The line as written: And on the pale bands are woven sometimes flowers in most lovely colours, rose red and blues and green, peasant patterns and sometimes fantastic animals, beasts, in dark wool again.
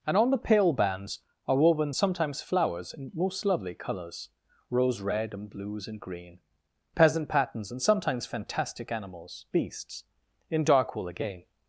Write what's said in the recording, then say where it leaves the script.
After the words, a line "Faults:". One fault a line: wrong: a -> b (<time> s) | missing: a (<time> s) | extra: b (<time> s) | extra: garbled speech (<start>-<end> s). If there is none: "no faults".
And on the pale bands are woven sometimes flowers in most lovely colours, rose red and blues and green, peasant patterns and sometimes fantastic animals, beasts, in dark wool again.
Faults:
no faults